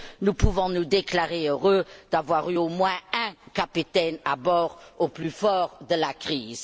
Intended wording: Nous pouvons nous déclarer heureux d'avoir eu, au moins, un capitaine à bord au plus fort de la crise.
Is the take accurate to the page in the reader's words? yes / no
yes